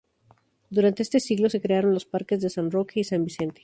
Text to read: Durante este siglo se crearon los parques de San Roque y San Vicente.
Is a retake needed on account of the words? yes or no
no